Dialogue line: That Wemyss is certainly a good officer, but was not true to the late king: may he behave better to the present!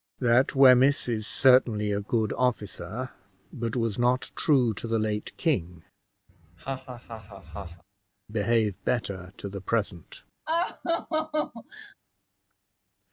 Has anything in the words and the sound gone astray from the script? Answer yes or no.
yes